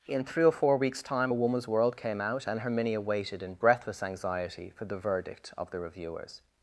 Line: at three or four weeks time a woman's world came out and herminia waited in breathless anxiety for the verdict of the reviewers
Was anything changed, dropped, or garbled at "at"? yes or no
yes